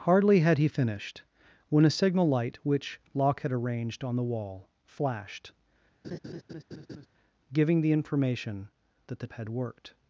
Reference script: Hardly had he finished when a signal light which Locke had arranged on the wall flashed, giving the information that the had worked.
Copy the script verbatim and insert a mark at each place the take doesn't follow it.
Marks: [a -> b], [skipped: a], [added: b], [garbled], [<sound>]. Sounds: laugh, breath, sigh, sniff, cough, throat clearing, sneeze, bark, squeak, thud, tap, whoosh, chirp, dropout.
Hardly had he finished when a signal light which Locke had arranged on the wall flashed, [laugh] giving the information that the had worked.